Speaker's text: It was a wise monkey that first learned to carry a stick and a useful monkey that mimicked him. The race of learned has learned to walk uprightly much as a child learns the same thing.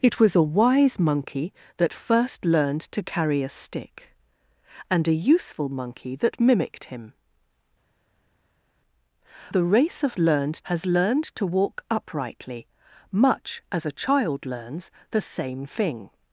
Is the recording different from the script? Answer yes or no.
no